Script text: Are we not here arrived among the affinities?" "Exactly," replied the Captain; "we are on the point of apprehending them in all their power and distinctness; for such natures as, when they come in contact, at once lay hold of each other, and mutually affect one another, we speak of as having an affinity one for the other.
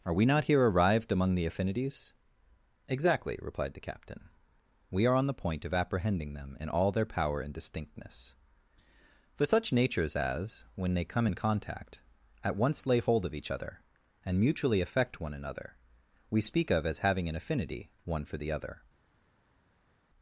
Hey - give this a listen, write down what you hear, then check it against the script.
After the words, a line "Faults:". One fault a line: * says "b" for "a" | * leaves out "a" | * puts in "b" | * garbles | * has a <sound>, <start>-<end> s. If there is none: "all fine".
Are we not here arrived among the affinities?" "Exactly," replied the Captain; "we are on the point of apprehending them in all their power and distinctness; for such natures as, when they come in contact, at once lay hold of each other, and mutually affect one another, we speak of as having an affinity one for the other.
Faults:
all fine